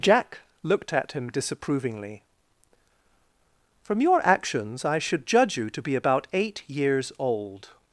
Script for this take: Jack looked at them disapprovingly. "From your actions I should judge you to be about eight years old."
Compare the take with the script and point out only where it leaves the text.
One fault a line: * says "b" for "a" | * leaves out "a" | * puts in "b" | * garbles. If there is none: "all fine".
* says "him" for "them"